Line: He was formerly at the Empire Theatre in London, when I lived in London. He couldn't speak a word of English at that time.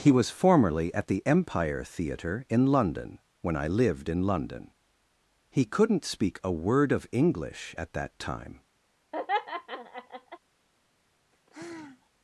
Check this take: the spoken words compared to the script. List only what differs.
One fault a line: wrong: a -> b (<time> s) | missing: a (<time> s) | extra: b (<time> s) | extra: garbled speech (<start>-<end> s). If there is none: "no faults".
no faults